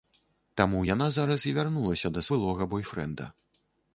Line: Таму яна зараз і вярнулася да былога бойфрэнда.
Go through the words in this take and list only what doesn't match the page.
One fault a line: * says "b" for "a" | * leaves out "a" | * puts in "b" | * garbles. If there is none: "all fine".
all fine